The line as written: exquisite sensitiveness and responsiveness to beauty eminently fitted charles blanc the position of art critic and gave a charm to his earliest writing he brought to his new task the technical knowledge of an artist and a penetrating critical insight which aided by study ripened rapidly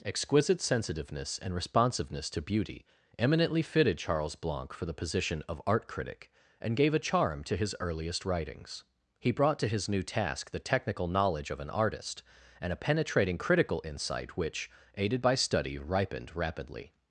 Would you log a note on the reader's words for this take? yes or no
yes